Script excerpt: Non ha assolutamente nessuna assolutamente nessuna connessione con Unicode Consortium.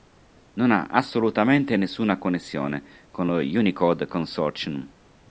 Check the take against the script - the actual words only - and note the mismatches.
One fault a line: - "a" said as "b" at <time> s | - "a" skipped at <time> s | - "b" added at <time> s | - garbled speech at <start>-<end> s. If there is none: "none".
- "assolutamente nessuna" skipped at 2.2 s
- "lo" added at 3.3 s